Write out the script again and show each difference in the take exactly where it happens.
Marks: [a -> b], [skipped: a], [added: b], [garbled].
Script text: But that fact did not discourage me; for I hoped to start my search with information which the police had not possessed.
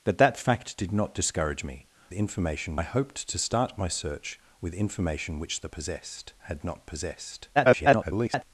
But that fact did not discourage me; [for -> information] I hoped to start my search with information which the [police -> possessed] had not possessed. [garbled]